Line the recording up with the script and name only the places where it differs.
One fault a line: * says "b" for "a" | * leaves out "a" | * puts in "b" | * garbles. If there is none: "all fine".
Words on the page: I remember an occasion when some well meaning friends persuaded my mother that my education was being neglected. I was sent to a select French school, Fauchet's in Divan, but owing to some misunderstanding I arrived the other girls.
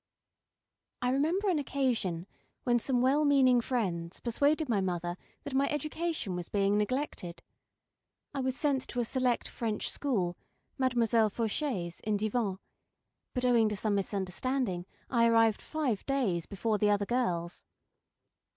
* puts in "Mademoiselle"
* puts in "five days before"